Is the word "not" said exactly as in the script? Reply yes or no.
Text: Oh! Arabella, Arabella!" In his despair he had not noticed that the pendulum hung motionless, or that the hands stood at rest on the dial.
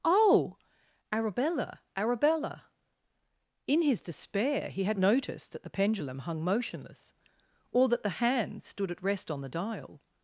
no